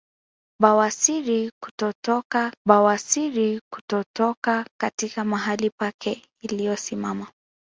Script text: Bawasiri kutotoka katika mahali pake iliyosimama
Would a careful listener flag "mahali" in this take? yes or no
no